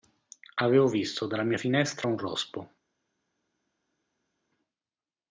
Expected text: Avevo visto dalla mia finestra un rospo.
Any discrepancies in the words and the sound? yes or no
no